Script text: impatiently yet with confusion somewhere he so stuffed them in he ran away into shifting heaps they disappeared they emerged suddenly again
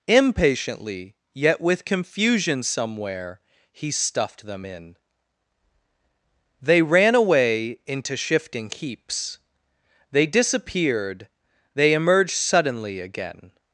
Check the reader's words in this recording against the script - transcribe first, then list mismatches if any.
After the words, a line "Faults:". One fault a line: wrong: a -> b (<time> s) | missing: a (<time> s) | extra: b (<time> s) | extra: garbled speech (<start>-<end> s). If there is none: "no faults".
impatiently yet with confusion somewhere he stuffed them in they ran away into shifting heaps they disappeared they emerged suddenly again
Faults:
missing: so (3.9 s)
wrong: he -> they (6.6 s)